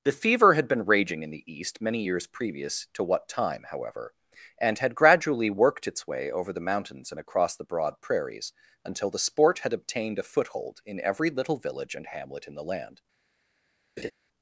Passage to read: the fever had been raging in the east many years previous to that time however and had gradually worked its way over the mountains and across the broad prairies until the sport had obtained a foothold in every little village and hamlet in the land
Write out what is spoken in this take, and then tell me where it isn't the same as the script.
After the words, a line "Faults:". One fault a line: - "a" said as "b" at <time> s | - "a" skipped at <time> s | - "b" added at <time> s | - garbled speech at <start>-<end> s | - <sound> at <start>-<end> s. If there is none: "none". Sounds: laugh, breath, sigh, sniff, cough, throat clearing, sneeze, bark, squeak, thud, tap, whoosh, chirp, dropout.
the fever had been raging in the east many years previous to what time however and had gradually worked its way over the mountains and across the broad prairies until the sport had obtained a foothold in every little village and hamlet in the land
Faults:
- "that" said as "what" at 3.0 s
- laugh at 14.0-14.1 s